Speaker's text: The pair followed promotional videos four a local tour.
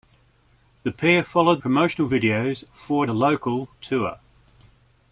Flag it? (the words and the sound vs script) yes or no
no